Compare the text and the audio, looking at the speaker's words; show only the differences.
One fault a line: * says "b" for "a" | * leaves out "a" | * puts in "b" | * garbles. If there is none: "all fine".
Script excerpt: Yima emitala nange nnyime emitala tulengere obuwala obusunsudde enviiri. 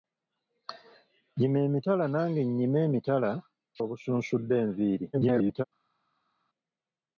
* leaves out "tulengere obuwala"
* garbles